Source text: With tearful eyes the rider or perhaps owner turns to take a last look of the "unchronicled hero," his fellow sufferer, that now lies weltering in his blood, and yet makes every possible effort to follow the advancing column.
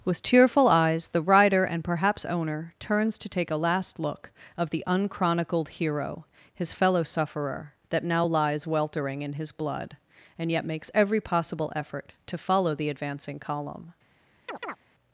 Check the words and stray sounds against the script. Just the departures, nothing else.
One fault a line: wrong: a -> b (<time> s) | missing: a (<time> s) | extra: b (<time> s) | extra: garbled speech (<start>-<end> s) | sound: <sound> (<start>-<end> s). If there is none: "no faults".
wrong: or -> and (1.6 s)
sound: chirp (14.5-14.8 s)